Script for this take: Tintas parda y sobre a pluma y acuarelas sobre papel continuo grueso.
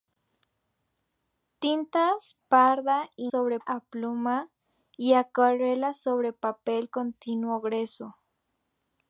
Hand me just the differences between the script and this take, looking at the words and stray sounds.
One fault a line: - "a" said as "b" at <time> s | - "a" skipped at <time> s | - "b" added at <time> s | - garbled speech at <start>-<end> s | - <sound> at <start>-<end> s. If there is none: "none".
none